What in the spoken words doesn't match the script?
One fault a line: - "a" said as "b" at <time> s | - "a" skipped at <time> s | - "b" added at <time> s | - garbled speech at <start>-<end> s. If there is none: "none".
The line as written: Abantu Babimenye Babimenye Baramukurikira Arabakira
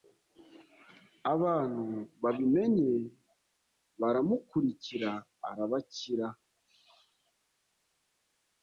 - "Babimenye" skipped at 2.9 s